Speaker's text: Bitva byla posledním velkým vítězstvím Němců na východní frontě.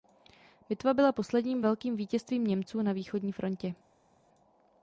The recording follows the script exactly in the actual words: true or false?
true